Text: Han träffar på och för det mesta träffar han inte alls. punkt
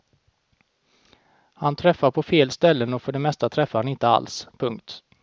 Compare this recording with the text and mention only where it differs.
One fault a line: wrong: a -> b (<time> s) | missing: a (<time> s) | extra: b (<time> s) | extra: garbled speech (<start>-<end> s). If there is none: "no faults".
extra: fel ställen (2.2 s)